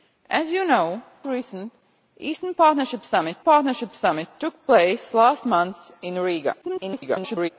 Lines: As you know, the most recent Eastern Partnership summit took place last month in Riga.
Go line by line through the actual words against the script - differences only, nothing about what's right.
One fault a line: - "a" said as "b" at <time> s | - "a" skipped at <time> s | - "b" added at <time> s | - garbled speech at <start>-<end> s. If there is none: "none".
- "the most recent Eastern" said as "recent Eastern Partnership summit" at 1.2 s
- garbled speech at 6.6-7.5 s